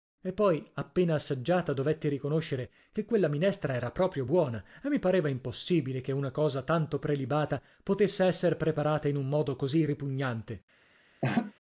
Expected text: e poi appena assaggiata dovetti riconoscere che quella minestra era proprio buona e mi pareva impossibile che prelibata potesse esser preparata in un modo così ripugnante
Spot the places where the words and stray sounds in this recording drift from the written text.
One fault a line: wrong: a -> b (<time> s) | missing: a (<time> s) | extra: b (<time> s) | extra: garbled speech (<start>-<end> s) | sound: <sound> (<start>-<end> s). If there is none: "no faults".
extra: una cosa tanto (6.1 s)
sound: laugh (11.2-11.5 s)